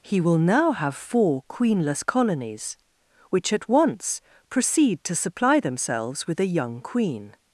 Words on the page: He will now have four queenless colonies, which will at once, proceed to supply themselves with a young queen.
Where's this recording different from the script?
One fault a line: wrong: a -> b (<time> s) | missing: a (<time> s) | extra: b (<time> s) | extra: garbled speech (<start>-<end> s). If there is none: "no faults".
missing: will (3.5 s)